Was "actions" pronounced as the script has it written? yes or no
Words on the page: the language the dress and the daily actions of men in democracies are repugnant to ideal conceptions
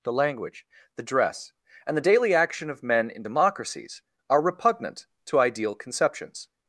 no